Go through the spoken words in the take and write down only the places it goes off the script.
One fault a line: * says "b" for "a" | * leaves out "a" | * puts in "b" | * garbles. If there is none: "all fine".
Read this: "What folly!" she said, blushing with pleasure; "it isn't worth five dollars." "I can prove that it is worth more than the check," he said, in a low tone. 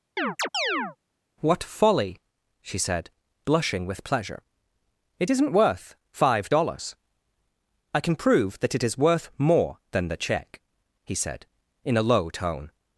all fine